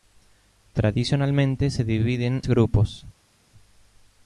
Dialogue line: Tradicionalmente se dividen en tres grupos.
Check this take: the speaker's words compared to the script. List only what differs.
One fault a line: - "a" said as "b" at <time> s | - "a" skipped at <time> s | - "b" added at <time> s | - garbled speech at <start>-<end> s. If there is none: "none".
- "en tres" skipped at 2.4 s